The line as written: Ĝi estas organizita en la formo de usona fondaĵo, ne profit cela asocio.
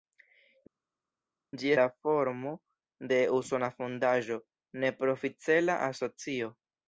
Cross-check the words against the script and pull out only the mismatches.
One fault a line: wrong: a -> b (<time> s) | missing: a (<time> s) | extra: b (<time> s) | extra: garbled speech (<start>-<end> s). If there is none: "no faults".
missing: estas organizita en (1.7 s)